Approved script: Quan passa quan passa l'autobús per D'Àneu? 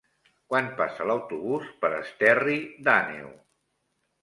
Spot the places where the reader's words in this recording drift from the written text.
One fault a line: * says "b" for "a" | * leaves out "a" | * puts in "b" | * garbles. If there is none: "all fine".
* leaves out "quan passa"
* puts in "Esterri"